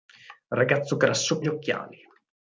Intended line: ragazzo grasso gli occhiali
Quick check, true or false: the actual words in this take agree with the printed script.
true